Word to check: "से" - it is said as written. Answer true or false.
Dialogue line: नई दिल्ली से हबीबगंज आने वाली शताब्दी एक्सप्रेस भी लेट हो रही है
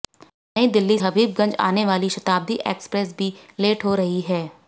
false